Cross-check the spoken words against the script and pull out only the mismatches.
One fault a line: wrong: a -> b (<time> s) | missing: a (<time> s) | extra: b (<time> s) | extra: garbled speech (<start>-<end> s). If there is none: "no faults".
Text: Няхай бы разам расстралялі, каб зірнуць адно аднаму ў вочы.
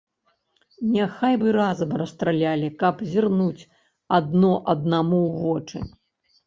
no faults